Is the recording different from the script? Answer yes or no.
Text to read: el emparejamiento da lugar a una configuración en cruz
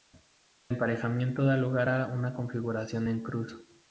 no